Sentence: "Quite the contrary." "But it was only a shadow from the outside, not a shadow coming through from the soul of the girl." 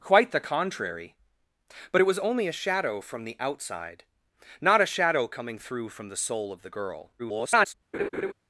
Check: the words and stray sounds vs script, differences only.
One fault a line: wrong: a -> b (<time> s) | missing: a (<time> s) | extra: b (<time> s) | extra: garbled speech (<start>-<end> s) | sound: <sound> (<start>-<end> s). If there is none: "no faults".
extra: garbled speech (7.2-7.7 s)
sound: laugh (7.9-8.3 s)